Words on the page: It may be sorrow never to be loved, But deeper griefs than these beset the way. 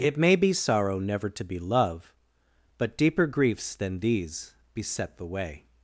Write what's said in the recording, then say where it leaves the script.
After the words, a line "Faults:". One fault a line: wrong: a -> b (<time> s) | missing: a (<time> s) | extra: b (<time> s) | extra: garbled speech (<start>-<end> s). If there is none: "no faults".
It may be sorrow never to be love, But deeper griefs than these beset the way.
Faults:
wrong: loved -> love (1.6 s)